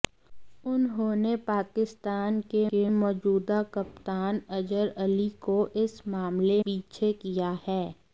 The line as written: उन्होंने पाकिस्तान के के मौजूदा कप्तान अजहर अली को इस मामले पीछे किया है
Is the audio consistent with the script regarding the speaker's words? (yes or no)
yes